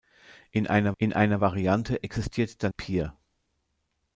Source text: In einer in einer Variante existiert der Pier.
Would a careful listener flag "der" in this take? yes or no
no